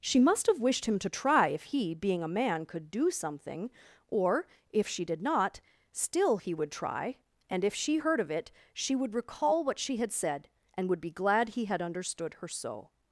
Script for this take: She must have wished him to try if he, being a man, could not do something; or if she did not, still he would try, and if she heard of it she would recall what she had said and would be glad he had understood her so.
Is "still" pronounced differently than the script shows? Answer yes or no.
no